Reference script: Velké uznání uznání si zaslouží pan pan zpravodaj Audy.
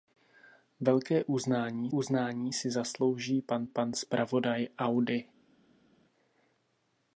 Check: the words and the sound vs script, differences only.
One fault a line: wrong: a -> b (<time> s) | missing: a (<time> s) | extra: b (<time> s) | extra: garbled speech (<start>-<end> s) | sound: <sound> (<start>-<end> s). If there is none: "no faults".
no faults